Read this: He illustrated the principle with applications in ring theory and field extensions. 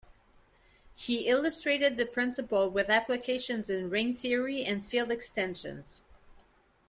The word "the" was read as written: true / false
true